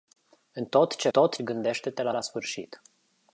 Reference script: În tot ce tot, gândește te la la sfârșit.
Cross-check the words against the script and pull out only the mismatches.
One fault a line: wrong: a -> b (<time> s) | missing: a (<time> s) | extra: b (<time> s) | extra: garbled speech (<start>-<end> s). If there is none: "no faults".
no faults